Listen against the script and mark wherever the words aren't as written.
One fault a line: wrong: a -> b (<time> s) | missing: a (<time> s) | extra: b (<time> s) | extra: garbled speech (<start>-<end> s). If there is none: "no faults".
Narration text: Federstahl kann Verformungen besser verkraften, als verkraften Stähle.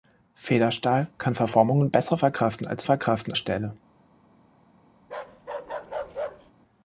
no faults